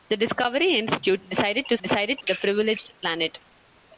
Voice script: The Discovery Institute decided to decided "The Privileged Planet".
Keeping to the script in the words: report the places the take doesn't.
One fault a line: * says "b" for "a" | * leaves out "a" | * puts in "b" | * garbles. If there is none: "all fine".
all fine